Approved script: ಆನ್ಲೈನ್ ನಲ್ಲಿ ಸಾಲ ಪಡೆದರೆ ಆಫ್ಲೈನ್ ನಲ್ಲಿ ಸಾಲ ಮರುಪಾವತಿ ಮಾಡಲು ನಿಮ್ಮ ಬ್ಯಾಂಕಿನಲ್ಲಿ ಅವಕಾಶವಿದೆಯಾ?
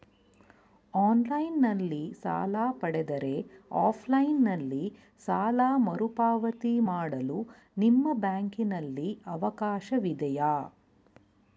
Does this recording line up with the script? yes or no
yes